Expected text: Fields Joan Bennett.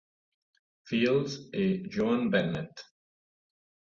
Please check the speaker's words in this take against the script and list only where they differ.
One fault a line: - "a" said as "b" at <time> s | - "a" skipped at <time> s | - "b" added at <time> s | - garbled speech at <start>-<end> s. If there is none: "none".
- "e" added at 1.5 s